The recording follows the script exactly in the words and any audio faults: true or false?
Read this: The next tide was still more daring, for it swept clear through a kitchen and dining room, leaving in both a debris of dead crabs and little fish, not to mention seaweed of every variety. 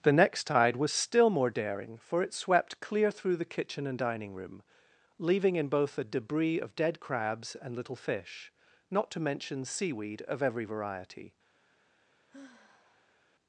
false